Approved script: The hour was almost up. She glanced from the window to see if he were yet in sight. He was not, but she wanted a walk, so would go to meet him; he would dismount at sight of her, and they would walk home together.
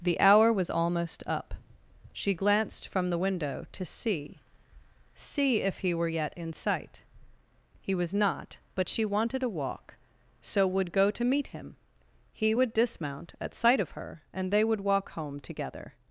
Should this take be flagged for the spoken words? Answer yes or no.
yes